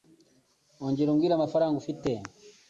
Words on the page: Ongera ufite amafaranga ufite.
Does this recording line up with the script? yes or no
no